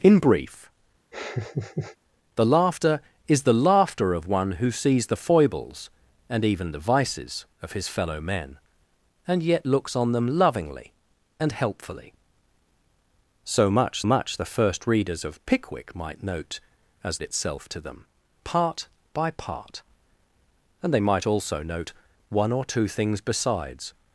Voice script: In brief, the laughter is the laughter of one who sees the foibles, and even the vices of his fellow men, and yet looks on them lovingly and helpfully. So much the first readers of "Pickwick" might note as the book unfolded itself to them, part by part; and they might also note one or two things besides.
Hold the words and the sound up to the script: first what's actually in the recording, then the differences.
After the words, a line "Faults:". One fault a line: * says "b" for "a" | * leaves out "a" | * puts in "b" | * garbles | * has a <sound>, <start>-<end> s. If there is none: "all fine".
In brief, the laughter is the laughter of one who sees the foibles, and even the vices of his fellow men, and yet looks on them lovingly and helpfully. So much much the first readers of "Pickwick" might note as itself to them, part by part; and they might also note one or two things besides.
Faults:
* has a laugh, 1.1-2.0 s
* puts in "much"
* leaves out "the book unfolded"